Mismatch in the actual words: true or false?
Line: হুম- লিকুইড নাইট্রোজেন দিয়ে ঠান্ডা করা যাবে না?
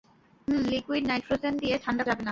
true